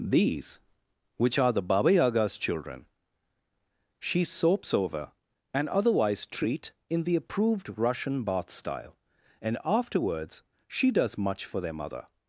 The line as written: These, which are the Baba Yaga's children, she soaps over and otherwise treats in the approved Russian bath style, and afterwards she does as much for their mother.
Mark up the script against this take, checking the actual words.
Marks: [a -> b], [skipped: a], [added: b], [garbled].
These, which are the Baba Yaga's children, she soaps over and otherwise [treats -> treat] in the approved Russian bath style, and afterwards she does [skipped: as] much for their mother.